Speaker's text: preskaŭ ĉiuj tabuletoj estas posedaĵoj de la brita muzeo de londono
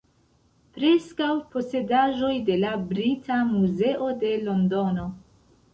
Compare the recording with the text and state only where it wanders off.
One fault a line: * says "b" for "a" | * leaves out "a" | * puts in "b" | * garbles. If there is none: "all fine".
* leaves out "ĉiuj tabuletoj estas"